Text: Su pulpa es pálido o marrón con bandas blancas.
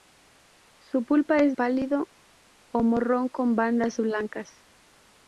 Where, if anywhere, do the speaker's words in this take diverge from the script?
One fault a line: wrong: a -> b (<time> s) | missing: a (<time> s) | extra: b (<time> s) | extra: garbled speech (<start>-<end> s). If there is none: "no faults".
no faults